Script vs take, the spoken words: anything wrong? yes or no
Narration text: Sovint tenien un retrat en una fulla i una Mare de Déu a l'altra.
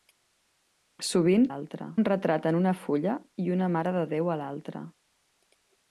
yes